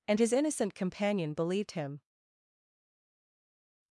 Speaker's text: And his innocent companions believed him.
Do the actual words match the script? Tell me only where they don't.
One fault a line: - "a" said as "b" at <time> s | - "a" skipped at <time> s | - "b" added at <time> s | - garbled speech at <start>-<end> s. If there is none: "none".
- "companions" said as "companion" at 0.8 s